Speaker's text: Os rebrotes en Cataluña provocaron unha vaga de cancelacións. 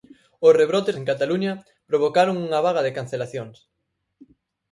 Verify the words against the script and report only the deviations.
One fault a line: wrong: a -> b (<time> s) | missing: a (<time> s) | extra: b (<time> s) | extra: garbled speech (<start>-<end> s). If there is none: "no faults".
no faults